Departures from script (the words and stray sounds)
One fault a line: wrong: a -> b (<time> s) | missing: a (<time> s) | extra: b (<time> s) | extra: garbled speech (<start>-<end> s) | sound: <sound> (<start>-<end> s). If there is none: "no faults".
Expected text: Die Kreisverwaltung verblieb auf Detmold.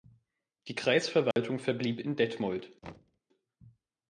sound: dropout (1.3-1.4 s)
wrong: auf -> in (2.0 s)
sound: thud (2.8-3.2 s)